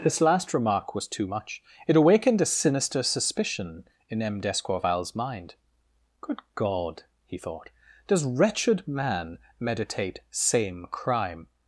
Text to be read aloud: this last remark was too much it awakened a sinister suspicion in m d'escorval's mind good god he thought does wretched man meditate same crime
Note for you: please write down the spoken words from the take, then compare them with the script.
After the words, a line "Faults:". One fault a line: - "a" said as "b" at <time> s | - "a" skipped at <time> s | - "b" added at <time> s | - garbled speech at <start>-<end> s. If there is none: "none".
this last remark was too much it awakened a sinister suspicion in m d'escorval's mind good god he thought does wretched man meditate same crime
Faults:
none